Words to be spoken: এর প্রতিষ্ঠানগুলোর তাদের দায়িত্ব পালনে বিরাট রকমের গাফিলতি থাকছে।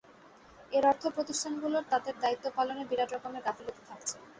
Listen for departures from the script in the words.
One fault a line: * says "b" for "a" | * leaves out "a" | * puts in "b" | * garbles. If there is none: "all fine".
* puts in "অর্থ"